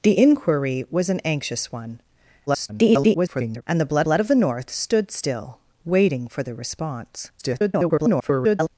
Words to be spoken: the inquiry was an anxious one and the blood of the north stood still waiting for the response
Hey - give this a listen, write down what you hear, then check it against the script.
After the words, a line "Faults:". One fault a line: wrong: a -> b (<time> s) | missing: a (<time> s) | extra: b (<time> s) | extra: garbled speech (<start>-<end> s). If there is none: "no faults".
the inquiry was an anxious one [garbled] and the blood blood of the north stood still waiting for the response [garbled]
Faults:
extra: garbled speech (2.5-3.6 s)
extra: blood (4.0 s)
extra: garbled speech (7.4-8.7 s)